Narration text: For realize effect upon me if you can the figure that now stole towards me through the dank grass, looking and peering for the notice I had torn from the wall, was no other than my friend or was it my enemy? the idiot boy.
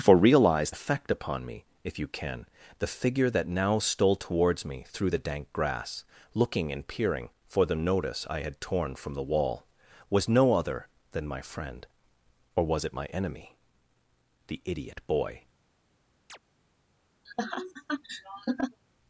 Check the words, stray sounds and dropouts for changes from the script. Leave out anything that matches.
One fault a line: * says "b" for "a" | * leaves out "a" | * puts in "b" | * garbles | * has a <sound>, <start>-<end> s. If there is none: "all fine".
* has a chirp, 16.3-16.4 s
* has a laugh, 17.2-18.8 s